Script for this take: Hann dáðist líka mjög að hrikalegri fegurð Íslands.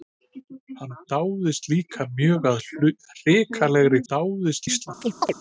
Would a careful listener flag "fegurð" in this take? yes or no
yes